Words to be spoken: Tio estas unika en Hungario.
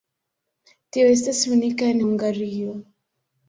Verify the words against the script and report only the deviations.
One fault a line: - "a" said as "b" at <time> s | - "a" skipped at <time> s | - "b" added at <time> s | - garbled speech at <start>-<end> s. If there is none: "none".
none